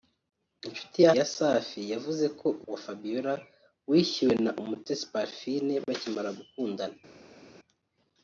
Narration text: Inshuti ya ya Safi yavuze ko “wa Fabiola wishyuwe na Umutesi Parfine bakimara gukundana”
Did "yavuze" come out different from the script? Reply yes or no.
no